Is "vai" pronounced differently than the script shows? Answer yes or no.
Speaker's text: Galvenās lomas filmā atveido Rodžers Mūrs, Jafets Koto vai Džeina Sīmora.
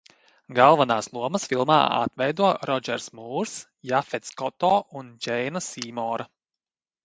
yes